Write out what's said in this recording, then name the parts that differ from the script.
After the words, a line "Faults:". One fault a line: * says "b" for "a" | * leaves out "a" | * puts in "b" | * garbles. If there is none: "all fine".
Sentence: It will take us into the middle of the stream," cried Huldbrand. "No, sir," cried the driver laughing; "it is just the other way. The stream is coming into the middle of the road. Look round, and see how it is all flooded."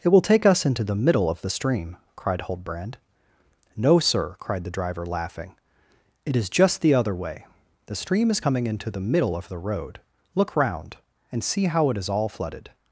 It will take us into the middle of the stream," cried Huldbrand. "No, sir," cried the driver laughing; "it is just the other way. The stream is coming into the middle of the road. Look round, and see how it is all flooded."
Faults:
all fine